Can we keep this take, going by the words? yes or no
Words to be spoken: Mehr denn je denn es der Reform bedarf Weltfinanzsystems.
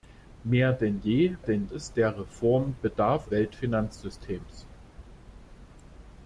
yes